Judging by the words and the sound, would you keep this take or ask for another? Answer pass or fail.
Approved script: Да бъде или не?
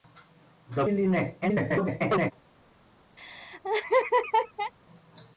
fail